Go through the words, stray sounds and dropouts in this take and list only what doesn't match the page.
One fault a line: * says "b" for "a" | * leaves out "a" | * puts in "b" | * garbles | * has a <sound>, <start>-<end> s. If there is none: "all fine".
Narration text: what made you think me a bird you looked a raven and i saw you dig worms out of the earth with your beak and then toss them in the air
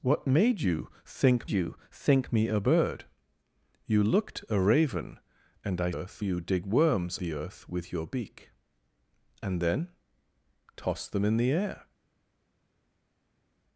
* puts in "you think"
* says "earth" for "saw"
* leaves out "out of"